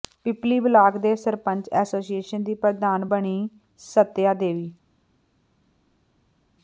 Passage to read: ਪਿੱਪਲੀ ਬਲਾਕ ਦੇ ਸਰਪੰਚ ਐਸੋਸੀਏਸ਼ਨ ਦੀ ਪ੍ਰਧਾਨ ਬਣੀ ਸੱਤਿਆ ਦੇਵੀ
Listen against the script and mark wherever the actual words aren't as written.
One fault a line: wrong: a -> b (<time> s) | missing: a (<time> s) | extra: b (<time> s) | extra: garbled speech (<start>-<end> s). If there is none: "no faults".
no faults